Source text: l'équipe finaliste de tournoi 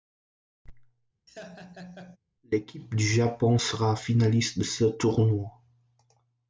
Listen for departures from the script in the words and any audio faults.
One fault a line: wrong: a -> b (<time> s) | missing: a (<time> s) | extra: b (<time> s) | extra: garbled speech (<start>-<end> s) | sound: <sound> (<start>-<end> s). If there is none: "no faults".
sound: laugh (1.3-2.2 s)
extra: du japon sera (2.9 s)
extra: ce (4.6 s)